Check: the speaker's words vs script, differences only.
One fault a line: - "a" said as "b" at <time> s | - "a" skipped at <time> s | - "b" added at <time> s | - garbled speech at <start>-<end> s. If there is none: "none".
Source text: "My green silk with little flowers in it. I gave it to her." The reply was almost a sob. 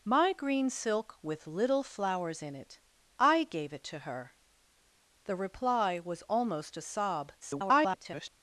- garbled speech at 7.4-8.3 s